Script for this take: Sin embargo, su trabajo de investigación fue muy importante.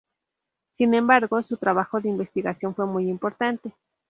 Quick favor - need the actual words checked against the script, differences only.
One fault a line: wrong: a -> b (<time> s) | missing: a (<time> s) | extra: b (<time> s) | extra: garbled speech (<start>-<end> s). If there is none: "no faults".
no faults